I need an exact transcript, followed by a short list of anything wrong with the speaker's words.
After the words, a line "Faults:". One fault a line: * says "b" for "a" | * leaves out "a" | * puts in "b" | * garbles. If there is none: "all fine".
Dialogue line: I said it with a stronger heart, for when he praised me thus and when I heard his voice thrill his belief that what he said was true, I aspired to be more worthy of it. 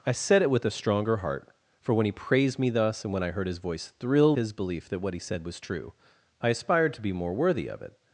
I said it with a stronger heart, for when he praised me thus and when I heard his voice thrill his belief that what he said was true, I aspired to be more worthy of it.
Faults:
all fine